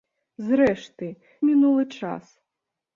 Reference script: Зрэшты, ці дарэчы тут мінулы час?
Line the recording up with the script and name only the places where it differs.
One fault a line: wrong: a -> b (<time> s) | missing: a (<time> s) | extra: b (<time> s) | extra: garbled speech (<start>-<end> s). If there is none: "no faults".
missing: ці дарэчы тут (1.1 s)